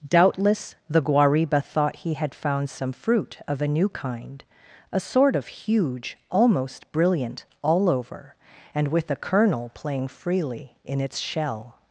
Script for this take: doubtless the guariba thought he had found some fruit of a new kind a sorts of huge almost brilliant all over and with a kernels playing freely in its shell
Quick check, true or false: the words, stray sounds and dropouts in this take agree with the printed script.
false